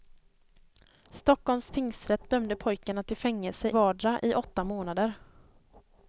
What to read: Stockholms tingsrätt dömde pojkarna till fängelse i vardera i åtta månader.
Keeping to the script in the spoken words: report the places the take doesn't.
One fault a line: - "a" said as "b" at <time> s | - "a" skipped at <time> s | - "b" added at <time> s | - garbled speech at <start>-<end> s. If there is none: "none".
- "i" skipped at 3.7 s